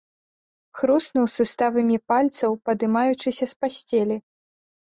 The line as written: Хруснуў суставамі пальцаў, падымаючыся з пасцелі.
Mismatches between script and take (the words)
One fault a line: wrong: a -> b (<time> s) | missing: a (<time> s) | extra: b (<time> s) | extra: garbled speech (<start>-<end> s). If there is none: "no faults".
no faults